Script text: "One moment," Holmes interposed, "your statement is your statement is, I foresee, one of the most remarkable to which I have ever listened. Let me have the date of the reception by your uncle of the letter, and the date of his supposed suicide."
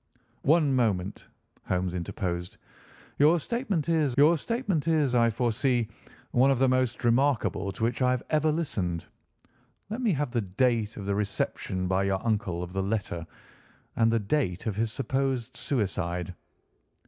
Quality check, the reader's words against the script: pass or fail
pass